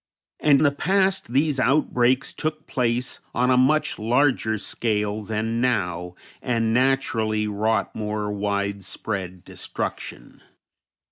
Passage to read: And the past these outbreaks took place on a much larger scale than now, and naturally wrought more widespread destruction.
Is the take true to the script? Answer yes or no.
yes